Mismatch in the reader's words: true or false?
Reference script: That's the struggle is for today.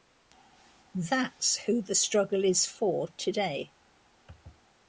true